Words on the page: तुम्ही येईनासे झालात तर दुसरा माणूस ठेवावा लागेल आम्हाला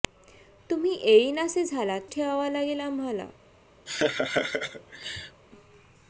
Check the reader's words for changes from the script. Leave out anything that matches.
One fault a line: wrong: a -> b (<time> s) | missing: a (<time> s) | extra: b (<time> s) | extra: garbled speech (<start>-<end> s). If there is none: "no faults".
missing: तर दुसरा माणूस (2.1 s)